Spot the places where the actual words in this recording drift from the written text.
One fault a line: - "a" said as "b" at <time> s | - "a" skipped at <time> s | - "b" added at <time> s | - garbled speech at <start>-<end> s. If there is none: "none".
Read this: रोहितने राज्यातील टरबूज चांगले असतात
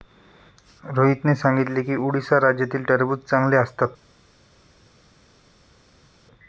- "सांगितले की उडीसा" added at 1.4 s